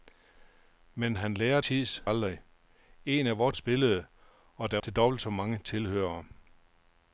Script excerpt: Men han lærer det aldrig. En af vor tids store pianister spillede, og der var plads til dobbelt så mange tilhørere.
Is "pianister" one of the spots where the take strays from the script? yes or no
yes